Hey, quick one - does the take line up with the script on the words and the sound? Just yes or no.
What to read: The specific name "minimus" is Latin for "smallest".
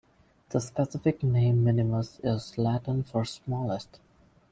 yes